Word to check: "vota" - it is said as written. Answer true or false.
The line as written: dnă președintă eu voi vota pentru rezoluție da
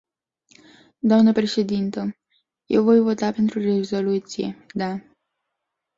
true